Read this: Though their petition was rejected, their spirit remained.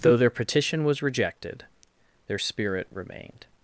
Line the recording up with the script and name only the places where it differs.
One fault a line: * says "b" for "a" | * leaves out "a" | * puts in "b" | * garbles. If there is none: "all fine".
all fine